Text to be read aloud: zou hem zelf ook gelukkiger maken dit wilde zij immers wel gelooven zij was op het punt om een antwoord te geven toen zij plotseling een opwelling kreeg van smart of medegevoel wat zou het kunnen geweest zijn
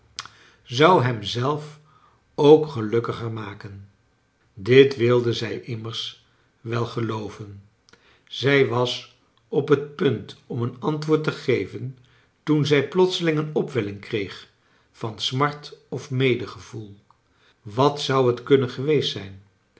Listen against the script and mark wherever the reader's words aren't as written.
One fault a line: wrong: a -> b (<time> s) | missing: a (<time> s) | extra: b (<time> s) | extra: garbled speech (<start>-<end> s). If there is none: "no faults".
no faults